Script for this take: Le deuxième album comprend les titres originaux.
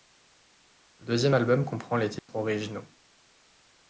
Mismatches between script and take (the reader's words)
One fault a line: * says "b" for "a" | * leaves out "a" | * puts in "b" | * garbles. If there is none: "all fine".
all fine